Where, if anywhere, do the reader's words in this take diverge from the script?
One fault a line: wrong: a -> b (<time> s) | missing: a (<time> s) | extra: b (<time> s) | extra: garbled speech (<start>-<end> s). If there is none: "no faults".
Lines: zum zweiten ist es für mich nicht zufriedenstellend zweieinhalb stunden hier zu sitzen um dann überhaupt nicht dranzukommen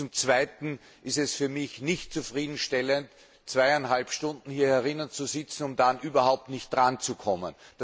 no faults